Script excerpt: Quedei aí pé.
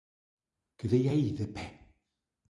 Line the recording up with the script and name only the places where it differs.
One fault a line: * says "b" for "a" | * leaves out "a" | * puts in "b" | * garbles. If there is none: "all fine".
* puts in "de"